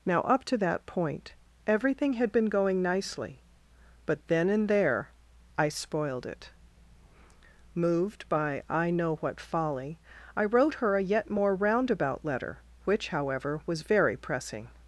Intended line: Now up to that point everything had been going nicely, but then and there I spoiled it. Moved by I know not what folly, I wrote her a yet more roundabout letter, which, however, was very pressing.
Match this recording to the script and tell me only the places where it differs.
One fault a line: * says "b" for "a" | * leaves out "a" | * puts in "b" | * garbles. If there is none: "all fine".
* leaves out "not"